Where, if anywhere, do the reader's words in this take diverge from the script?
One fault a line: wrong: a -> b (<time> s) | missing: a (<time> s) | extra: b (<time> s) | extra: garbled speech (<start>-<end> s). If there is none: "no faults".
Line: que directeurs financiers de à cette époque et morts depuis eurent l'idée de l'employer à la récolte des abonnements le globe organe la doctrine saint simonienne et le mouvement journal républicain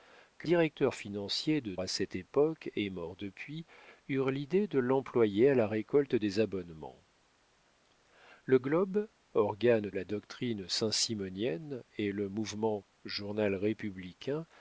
no faults